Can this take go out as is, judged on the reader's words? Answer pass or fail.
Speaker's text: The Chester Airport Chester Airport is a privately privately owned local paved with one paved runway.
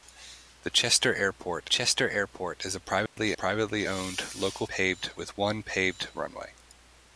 pass